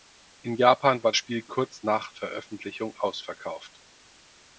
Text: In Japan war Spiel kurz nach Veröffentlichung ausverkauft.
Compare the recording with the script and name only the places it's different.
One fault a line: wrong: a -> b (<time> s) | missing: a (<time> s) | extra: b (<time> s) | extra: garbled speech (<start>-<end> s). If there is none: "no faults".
no faults